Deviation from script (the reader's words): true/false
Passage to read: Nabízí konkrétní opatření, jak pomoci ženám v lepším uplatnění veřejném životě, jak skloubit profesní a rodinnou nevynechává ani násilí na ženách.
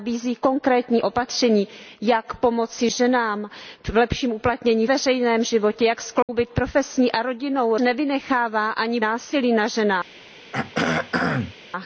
false